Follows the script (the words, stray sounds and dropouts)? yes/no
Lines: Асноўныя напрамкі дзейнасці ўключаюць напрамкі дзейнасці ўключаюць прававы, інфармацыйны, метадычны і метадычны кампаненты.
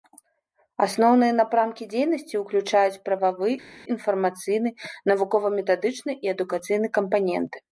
no